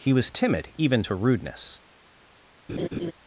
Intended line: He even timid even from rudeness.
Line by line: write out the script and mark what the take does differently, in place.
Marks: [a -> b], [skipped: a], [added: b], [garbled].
He [even -> was] timid even [from -> to] rudeness.